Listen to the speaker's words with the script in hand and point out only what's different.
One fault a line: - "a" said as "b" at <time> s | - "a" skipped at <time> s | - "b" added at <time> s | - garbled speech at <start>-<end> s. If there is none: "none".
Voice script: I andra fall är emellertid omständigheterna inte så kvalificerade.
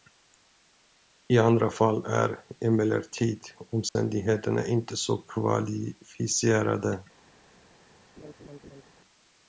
none